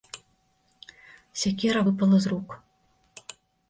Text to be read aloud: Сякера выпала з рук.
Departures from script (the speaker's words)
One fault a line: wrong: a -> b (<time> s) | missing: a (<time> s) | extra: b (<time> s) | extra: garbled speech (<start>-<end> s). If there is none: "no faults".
no faults